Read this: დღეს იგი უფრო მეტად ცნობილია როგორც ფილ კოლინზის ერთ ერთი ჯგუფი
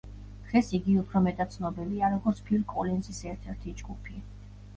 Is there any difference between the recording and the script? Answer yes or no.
no